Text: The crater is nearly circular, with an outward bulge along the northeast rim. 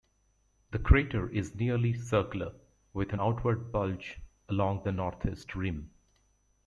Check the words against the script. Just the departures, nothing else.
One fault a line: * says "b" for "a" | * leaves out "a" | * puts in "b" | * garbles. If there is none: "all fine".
all fine